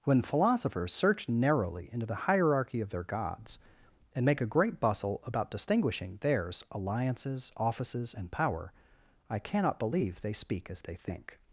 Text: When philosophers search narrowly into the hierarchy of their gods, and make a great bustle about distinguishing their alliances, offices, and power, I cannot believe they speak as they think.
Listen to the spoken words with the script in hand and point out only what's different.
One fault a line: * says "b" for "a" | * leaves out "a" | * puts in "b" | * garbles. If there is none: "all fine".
* says "theirs" for "their"